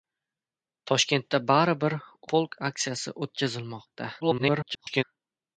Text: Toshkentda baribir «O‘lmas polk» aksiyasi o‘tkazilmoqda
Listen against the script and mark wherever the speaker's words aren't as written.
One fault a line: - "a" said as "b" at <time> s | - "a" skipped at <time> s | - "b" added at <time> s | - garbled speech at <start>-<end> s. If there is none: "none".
- "O‘lmas" skipped at 2.0 s
- garbled speech at 4.2-5.0 s